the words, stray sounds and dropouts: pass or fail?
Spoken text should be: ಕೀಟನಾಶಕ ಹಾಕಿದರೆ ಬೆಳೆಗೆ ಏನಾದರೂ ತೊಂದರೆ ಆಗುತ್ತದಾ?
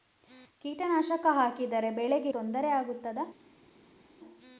fail